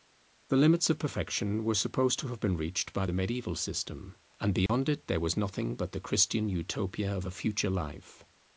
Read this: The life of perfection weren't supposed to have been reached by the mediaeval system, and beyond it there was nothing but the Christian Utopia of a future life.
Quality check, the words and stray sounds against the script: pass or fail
fail